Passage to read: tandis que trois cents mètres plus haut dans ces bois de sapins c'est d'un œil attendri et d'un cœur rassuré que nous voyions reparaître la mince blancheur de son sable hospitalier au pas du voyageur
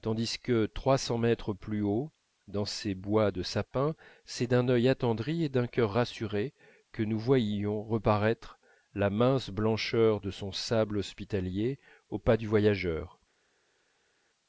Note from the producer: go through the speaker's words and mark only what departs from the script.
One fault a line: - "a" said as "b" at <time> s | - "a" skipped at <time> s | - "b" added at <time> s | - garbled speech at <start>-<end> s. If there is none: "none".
none